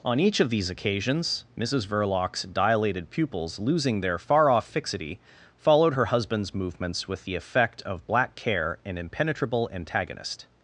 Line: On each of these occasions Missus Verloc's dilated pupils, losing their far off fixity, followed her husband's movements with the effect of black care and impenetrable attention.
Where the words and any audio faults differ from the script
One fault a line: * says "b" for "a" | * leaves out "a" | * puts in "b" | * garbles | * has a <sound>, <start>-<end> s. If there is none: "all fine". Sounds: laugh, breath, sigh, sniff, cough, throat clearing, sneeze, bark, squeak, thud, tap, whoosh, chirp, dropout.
* says "antagonist" for "attention"